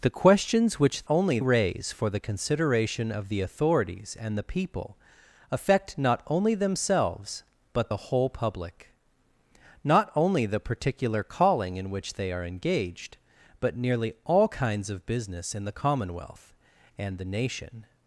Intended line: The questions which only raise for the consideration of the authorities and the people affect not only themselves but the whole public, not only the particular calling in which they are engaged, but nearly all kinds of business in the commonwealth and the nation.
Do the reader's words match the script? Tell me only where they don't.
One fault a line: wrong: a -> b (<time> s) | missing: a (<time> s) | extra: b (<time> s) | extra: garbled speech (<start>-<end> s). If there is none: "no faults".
no faults